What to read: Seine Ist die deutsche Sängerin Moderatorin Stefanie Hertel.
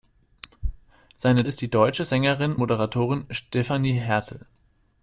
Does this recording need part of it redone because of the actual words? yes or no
no